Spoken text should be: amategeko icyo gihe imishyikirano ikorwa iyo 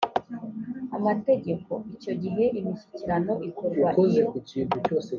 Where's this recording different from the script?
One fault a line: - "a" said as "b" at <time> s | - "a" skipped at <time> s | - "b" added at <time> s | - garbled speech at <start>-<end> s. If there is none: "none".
none